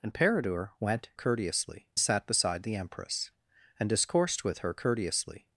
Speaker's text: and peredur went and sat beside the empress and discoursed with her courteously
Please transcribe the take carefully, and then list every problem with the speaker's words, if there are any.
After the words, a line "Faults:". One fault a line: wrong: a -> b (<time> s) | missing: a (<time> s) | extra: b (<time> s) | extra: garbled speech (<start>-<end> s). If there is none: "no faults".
and peredur went courteously sat beside the empress and discoursed with her courteously
Faults:
wrong: and -> courteously (1.1 s)